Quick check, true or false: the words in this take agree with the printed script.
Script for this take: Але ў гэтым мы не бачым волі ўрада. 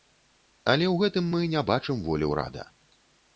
true